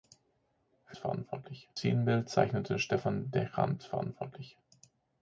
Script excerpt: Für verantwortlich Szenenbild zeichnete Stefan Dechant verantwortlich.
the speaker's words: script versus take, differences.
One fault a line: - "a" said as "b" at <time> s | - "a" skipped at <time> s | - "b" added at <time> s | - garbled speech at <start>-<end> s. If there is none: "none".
none